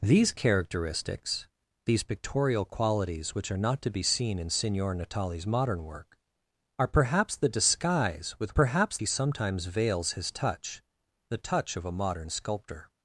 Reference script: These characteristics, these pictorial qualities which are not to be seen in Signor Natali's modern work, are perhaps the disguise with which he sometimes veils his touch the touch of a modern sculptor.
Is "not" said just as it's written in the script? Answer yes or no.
yes